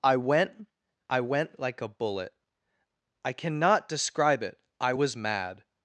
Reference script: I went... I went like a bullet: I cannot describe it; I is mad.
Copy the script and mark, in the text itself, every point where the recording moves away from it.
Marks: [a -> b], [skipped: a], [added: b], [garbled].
I went... I went like a bullet: I cannot describe it; I [is -> was] mad.